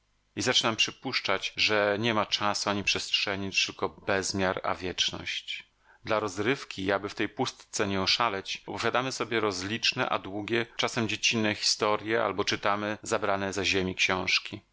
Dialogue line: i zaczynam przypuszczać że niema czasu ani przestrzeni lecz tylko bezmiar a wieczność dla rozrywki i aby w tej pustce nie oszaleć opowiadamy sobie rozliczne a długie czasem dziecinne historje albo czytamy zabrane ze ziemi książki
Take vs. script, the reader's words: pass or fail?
pass